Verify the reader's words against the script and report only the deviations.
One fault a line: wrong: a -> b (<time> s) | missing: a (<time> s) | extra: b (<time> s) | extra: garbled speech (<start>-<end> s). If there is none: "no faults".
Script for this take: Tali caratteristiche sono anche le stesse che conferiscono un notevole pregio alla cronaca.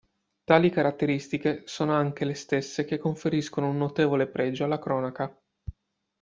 no faults